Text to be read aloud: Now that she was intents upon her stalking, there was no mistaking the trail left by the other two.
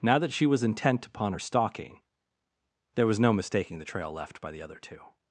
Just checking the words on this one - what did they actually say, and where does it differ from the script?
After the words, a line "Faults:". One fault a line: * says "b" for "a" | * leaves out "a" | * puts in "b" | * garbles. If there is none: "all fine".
Now that she was intent upon her stalking, there was no mistaking the trail left by the other two.
Faults:
* says "intent" for "intents"